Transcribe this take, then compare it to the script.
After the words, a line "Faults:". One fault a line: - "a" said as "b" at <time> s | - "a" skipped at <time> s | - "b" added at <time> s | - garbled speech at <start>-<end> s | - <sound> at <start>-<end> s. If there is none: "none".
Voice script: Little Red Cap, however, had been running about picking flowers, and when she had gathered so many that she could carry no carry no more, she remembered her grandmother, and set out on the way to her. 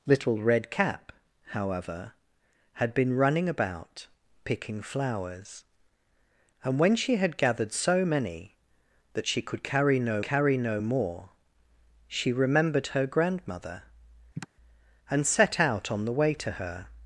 Little Red Cap, however, had been running about picking flowers, and when she had gathered so many that she could carry no carry no more, she remembered her grandmother, and set out on the way to her.
Faults:
- sigh at 14.3-14.5 s